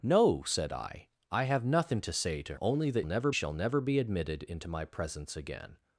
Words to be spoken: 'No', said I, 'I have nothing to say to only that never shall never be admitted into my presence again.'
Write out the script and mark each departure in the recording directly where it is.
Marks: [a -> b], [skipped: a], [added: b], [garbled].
'No', said I, 'I have nothing to say to only that never shall never be admitted into my presence again.'